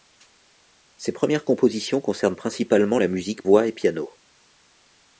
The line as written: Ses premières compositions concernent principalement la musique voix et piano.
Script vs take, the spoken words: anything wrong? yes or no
no